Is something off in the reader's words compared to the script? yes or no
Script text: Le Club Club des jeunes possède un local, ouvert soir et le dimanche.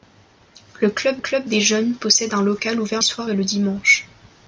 no